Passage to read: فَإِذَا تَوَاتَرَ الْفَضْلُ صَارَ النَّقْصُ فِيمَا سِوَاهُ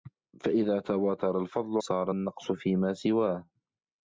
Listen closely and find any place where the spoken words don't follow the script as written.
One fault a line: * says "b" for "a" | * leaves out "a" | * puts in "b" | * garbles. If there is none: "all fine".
all fine